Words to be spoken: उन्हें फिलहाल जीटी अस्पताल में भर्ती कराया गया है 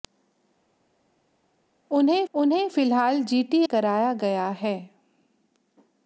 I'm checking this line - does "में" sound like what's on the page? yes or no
no